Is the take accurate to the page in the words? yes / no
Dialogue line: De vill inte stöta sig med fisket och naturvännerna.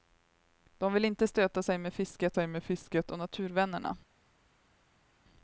no